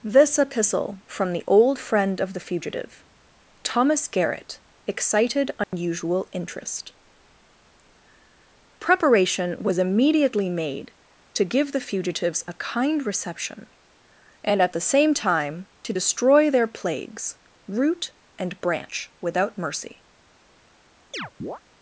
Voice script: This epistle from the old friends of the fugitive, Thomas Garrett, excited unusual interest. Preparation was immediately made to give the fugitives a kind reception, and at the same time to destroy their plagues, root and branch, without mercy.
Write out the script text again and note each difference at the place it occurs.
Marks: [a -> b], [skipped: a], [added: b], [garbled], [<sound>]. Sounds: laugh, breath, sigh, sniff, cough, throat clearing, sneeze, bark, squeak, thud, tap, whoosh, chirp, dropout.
This epistle from the old [friends -> friend] of the fugitive, Thomas Garrett, excited unusual [dropout] interest. Preparation was immediately made to give the fugitives a kind reception, and at the same time to destroy their plagues, root and branch, without mercy. [chirp]